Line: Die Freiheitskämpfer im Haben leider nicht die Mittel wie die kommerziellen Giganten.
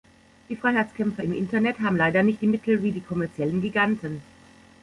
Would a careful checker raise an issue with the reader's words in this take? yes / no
yes